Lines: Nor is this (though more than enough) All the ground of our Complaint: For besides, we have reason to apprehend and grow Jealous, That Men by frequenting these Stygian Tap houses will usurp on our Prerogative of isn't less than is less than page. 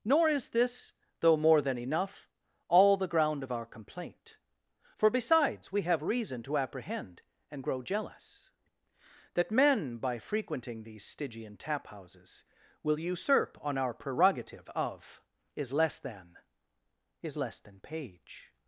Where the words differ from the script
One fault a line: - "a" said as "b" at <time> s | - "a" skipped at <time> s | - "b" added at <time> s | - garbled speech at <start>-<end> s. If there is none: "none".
- "isn't" said as "is" at 15.6 s